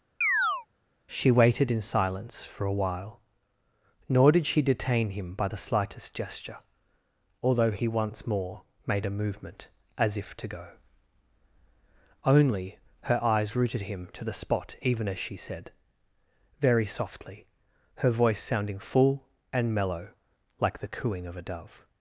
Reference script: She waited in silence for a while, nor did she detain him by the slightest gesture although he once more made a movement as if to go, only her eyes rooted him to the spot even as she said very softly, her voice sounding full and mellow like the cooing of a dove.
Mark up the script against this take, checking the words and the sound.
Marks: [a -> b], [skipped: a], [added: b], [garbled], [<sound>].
[chirp] She waited in silence for a while, nor did she detain him by the slightest gesture although he once more made a movement as if to go, only her eyes rooted him to the spot even as she said very softly, her voice sounding full and mellow like the cooing of a dove.